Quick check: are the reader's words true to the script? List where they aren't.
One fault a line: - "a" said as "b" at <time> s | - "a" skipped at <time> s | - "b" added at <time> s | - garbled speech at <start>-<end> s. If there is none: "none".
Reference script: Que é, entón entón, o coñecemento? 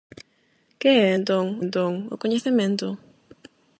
none